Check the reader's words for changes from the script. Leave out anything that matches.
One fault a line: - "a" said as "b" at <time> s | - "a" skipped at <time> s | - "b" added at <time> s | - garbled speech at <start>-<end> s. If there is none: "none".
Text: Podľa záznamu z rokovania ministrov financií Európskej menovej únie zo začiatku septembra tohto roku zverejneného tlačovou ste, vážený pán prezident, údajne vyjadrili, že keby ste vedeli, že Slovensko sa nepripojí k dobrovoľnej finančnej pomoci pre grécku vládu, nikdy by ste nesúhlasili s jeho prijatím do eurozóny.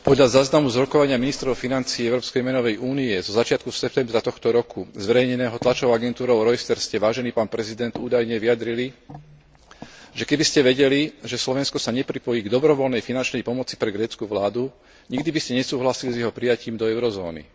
- "agentúrou Reuters" added at 5.9 s